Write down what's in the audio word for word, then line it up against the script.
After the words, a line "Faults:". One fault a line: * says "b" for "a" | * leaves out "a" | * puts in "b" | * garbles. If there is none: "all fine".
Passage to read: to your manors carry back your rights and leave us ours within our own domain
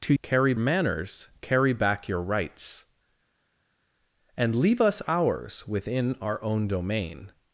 to carry manors carry back your rights and leave us ours within our own domain
Faults:
* says "carry" for "your"